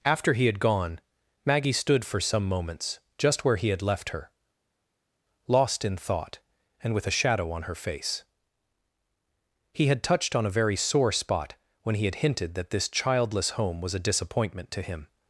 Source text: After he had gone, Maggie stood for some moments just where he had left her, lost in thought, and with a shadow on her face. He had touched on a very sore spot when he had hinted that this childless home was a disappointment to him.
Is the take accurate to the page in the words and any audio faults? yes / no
yes